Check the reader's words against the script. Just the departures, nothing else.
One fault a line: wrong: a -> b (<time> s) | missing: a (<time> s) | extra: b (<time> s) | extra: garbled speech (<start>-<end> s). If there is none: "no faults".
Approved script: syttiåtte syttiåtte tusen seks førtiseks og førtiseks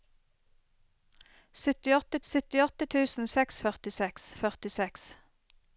no faults